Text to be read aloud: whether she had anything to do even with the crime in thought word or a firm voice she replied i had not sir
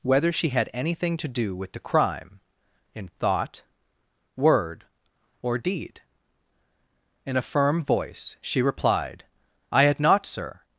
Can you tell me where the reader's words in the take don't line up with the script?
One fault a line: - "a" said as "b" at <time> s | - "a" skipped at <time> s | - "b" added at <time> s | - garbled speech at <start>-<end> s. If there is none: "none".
- "even" skipped at 1.6 s
- "deed in" added at 5.6 s